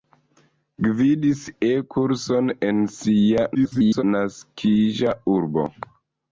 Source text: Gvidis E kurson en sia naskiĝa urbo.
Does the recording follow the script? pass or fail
fail